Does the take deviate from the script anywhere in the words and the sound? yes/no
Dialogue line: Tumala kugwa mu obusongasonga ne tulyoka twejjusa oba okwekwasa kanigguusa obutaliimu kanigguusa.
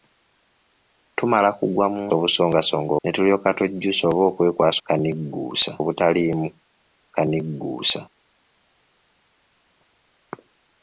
no